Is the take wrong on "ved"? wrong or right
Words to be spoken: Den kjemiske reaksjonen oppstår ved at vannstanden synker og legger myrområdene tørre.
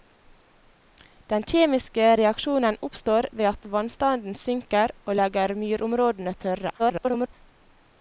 right